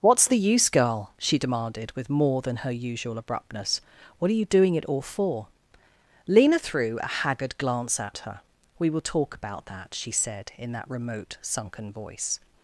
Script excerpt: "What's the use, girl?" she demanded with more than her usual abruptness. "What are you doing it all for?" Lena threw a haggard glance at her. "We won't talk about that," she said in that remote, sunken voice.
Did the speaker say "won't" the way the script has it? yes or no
no